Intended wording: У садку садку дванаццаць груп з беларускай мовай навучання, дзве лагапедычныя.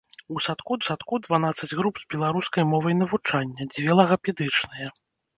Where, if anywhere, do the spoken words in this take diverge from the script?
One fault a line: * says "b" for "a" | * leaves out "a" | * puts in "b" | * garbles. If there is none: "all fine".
all fine